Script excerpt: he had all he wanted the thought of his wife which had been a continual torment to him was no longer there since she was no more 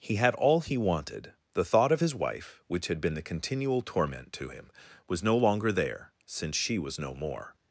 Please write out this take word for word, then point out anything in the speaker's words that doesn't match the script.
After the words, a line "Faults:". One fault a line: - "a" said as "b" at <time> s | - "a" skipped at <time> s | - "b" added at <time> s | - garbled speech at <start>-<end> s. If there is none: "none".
he had all he wanted the thought of his wife which had been the continual torment to him was no longer there since she was no more
Faults:
- "a" said as "the" at 3.2 s